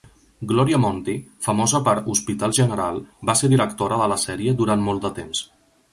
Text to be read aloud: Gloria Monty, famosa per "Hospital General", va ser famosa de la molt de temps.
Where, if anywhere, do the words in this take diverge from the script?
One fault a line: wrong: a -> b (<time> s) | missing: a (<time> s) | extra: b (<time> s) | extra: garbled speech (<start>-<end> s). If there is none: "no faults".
wrong: famosa -> directora (3.6 s)
extra: sèrie durant (4.3 s)